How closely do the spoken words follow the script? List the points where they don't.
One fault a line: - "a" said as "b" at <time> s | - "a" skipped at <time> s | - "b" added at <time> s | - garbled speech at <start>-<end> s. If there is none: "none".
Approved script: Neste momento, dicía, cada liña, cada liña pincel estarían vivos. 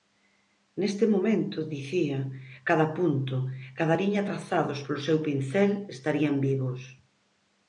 - "liña" said as "punto" at 3.0 s
- "trazados polo seu" added at 4.3 s